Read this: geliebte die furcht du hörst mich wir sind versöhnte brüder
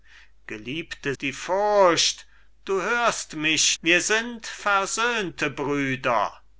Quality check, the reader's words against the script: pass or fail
pass